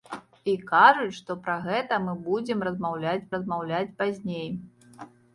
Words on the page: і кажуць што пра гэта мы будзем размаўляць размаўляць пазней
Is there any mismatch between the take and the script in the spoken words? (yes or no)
no